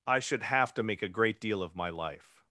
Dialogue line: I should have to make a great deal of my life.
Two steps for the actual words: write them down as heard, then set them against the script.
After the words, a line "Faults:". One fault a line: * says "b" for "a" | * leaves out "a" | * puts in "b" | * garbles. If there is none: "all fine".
I should have to make a great deal of my life.
Faults:
all fine